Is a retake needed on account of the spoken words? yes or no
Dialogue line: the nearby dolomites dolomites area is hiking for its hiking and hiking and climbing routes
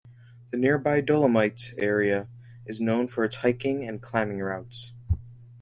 yes